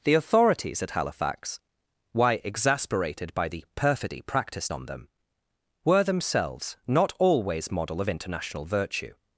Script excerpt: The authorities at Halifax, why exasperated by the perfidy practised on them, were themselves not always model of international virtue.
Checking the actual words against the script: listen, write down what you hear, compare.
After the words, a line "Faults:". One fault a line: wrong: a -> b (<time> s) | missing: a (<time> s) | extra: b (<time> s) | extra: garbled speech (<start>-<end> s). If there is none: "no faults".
The authorities at Halifax, why exasperated by the perfidy practised on them, were themselves not always model of international virtue.
Faults:
no faults